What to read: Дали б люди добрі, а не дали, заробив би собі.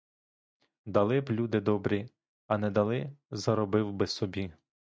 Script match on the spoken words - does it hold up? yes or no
yes